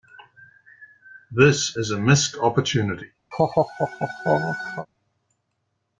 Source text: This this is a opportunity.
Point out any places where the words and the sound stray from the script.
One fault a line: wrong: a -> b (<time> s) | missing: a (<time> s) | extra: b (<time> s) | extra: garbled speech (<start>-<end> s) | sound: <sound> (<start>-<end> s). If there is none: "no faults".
missing: this (1.8 s)
extra: missed (2.0 s)
sound: laugh (3.3-4.9 s)